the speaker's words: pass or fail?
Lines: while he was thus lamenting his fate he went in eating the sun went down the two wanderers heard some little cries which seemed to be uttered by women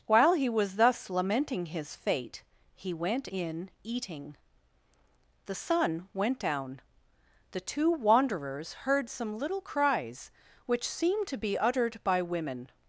pass